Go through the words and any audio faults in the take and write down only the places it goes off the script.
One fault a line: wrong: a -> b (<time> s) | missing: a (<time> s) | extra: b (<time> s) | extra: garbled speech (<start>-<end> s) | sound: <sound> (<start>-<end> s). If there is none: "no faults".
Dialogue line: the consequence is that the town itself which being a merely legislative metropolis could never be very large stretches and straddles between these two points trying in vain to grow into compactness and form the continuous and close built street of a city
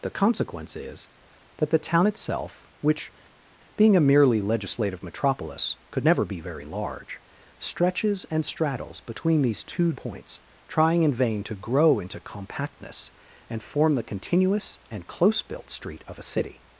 no faults